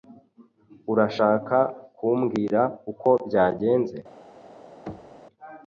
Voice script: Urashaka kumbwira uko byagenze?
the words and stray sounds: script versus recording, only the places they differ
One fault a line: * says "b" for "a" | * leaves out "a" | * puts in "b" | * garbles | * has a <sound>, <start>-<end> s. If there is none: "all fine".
* has a thud, 4.9-5.2 s